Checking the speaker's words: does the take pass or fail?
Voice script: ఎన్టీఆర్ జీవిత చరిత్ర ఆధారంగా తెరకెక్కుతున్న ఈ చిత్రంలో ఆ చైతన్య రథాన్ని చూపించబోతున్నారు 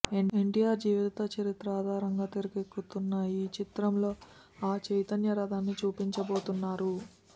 pass